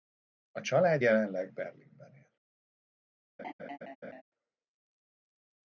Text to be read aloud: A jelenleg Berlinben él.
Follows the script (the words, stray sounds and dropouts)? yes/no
no